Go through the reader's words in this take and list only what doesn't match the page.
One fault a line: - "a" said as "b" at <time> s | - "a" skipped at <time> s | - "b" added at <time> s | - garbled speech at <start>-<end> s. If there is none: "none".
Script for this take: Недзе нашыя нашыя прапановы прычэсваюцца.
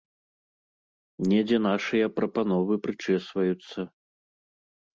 - "нашыя" skipped at 2.1 s